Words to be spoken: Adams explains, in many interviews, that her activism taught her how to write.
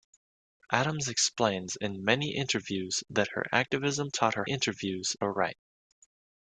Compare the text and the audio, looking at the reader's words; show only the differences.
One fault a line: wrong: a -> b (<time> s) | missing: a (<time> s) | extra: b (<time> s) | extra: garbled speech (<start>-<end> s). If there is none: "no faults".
wrong: how -> interviews (4.5 s)